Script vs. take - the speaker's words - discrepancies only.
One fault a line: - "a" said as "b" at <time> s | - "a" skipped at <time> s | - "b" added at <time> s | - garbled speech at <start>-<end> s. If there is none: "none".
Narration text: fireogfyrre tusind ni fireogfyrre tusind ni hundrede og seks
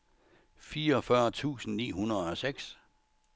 - "fireogfyrre tusind ni" skipped at 1.9 s